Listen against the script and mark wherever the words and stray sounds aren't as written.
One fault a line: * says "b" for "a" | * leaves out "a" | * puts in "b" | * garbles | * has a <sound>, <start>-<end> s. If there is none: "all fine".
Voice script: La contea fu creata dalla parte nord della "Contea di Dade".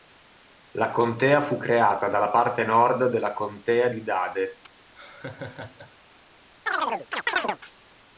* has a laugh, 5.0-6.0 s
* has a chirp, 6.7-7.6 s